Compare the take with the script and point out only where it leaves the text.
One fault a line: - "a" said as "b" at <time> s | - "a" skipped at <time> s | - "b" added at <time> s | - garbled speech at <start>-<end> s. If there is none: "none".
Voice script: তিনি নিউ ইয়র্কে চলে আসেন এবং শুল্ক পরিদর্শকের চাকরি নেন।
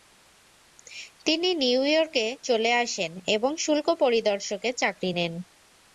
none